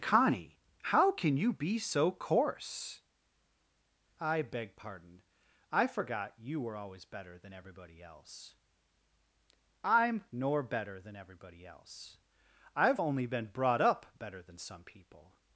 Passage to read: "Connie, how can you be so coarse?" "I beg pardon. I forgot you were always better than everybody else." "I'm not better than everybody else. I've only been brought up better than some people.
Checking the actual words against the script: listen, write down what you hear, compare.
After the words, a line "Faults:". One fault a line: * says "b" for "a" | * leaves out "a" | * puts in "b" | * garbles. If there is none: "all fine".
"Connie, how can you be so coarse?" "I beg pardon. I forgot you were always better than everybody else." "I'm nor better than everybody else. I've only been brought up better than some people.
Faults:
* says "nor" for "not"